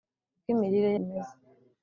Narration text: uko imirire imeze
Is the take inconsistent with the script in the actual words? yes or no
no